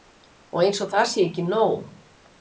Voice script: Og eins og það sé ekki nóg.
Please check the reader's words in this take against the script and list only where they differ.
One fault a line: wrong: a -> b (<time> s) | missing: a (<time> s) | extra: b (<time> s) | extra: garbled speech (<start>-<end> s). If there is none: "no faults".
no faults